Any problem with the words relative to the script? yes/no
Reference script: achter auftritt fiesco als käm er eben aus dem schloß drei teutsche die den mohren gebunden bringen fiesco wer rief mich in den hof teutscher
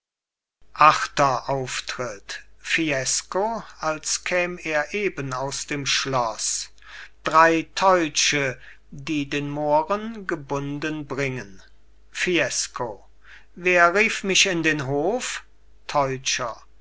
no